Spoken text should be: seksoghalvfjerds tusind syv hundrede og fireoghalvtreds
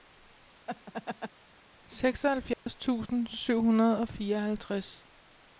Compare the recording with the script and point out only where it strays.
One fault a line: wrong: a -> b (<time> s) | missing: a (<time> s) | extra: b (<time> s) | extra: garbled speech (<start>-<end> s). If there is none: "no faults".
no faults